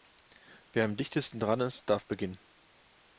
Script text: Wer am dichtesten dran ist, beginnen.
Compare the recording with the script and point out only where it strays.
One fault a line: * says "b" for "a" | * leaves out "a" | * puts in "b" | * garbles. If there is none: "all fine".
* puts in "darf"